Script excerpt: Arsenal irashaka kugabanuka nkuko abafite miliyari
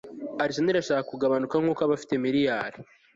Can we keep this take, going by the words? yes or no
yes